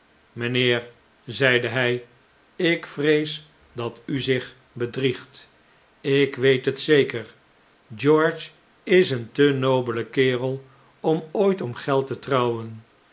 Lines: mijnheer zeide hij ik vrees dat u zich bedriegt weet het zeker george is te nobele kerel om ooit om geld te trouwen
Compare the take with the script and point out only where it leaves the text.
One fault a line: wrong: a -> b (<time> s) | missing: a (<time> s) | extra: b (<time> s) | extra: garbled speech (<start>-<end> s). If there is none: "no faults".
extra: ik (6.0 s)
extra: een (9.1 s)